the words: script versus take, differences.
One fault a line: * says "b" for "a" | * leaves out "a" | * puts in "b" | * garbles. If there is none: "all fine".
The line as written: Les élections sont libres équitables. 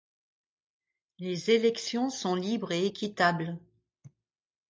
* puts in "et"